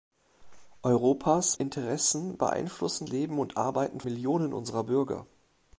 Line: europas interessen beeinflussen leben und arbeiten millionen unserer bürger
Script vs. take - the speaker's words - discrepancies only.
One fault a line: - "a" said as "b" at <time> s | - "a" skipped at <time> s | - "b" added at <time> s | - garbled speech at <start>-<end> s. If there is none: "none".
none